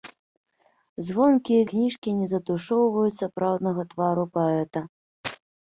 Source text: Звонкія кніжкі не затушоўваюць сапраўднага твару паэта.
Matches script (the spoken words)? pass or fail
pass